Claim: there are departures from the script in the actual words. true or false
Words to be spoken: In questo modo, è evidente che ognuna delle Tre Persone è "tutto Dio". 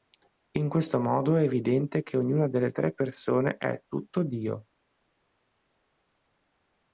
false